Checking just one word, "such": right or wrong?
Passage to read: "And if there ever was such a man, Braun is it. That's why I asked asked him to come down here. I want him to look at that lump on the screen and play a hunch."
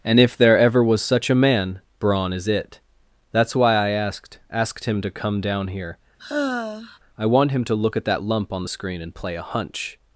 right